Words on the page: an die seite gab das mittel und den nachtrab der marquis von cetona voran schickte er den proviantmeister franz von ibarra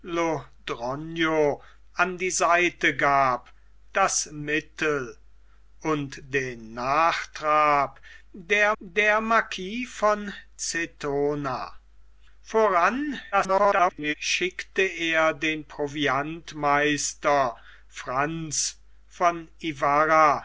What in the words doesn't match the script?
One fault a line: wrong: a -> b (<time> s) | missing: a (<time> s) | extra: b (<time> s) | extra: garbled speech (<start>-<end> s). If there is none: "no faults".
extra: der (8.8 s)
extra: garbled speech (13.3-14.1 s)